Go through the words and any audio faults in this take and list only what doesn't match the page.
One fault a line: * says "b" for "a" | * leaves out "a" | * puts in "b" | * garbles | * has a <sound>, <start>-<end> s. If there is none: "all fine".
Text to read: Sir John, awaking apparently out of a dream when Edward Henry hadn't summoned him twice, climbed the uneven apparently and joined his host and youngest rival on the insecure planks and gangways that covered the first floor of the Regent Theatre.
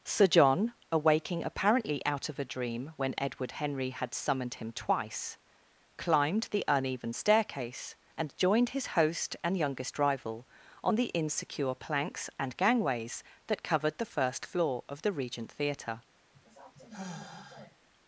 * says "had" for "hadn't"
* says "staircase" for "apparently"
* has a sigh, 16.3-17.8 s